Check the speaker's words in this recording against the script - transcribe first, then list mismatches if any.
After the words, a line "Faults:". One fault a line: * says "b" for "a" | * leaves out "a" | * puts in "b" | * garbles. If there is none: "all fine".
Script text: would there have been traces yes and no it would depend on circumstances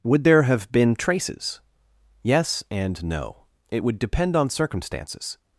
would there have been traces yes and no it would depend on circumstances
Faults:
all fine